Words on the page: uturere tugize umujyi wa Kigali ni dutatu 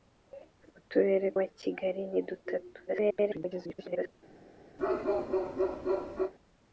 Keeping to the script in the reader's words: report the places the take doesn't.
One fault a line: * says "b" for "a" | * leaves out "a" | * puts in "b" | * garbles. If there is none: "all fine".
* leaves out "tugize umujyi"
* garbles